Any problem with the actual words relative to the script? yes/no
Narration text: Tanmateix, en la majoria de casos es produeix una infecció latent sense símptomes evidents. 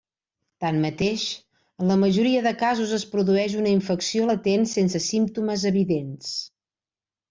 no